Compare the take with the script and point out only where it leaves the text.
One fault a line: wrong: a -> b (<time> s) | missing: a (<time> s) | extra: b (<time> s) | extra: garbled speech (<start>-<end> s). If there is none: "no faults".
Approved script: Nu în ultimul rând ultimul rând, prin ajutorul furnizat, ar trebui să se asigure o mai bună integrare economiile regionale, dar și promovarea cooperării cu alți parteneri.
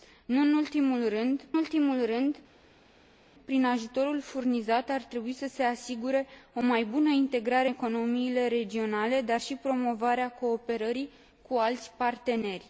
no faults